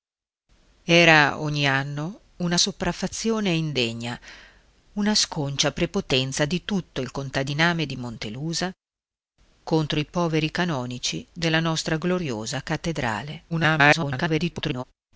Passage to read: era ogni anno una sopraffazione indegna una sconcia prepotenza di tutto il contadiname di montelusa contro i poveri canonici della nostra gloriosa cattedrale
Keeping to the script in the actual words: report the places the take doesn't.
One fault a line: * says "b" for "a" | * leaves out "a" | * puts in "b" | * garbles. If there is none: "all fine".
* garbles